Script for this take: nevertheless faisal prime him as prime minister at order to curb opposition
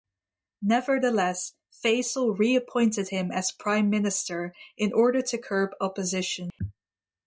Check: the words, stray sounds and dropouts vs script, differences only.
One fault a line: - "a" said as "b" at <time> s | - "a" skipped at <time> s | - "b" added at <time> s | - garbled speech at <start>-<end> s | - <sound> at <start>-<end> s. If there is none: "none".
- "prime" said as "reappointed" at 2.4 s
- "at" said as "in" at 4.8 s
- dropout at 6.5-6.6 s